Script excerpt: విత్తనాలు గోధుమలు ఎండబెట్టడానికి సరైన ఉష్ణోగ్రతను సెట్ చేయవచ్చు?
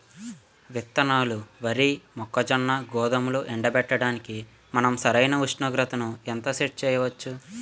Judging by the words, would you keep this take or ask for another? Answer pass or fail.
fail